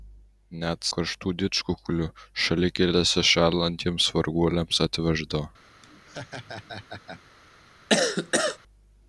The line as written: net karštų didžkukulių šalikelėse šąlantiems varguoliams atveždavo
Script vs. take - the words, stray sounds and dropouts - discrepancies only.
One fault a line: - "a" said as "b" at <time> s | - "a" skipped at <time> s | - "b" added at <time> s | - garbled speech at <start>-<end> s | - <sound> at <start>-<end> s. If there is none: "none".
- laugh at 5.8-7.2 s
- cough at 7.9-8.6 s